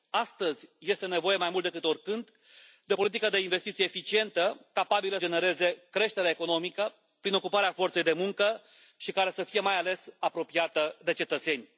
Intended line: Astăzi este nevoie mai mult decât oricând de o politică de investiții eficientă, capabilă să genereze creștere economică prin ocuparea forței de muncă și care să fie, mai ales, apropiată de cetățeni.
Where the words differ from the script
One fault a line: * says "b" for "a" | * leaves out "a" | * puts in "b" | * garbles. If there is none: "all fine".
* leaves out "să"